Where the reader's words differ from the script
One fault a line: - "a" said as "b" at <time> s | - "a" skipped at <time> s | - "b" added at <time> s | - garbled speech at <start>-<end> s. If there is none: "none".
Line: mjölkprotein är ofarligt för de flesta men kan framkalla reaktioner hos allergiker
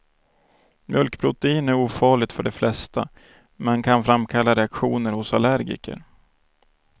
none